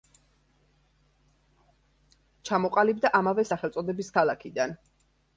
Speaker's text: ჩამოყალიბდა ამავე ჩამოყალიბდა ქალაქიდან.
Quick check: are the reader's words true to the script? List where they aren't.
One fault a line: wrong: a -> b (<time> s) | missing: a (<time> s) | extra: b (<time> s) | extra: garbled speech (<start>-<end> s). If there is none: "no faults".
wrong: ჩამოყალიბდა -> სახელწოდების (3.5 s)